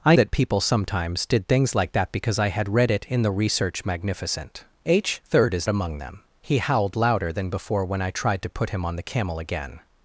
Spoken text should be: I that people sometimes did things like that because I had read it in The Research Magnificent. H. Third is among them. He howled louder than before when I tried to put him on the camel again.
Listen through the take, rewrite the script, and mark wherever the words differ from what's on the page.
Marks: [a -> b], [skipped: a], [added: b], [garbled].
I that people sometimes did things like that because I had read it in The Research Magnificent. H. Third is among them. He howled louder than before when I tried to put him on the camel again.